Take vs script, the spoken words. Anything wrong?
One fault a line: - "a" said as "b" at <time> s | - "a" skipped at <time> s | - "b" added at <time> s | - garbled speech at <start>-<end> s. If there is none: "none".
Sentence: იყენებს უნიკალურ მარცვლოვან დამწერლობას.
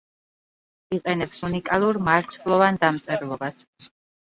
none